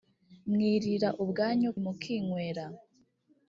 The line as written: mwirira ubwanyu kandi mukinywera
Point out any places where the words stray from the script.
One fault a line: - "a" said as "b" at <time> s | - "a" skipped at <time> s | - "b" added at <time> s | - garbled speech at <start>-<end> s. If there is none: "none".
- "kandi" skipped at 1.7 s